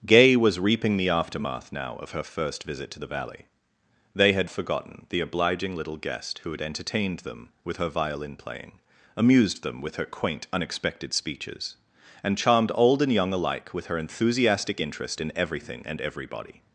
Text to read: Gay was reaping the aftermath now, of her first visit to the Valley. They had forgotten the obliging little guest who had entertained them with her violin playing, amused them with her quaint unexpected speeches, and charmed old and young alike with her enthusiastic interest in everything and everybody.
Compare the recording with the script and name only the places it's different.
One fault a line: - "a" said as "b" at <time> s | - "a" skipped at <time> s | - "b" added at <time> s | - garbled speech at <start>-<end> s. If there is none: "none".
none